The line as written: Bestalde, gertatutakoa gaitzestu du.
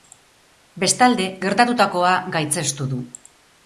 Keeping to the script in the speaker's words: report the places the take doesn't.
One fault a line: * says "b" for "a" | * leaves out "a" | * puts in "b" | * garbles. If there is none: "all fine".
all fine